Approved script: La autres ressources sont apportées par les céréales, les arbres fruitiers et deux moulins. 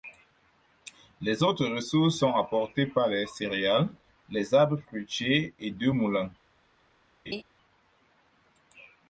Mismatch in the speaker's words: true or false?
true